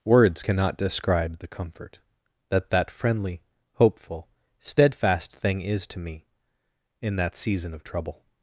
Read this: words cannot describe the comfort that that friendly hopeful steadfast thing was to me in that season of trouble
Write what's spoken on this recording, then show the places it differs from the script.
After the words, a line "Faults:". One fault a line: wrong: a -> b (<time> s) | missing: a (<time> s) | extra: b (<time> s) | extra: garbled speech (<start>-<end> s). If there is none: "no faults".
words cannot describe the comfort that that friendly hopeful steadfast thing is to me in that season of trouble
Faults:
wrong: was -> is (5.6 s)